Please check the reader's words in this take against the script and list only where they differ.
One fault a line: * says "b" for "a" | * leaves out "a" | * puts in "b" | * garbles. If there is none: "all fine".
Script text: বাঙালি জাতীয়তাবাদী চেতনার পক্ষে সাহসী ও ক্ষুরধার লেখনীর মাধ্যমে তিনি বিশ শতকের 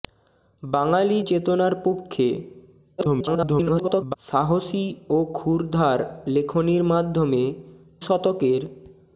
* leaves out "জাতীয়তাবাদী"
* garbles
* leaves out "তিনি বিশ"